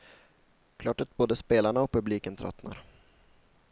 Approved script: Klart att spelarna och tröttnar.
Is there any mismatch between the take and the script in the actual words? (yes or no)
yes